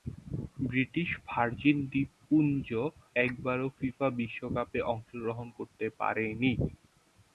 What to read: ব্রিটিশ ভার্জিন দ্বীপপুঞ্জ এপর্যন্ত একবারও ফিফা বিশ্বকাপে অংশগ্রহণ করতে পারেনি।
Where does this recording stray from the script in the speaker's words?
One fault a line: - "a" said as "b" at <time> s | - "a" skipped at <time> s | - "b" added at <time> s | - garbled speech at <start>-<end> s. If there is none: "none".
- "এপর্যন্ত" skipped at 2.7 s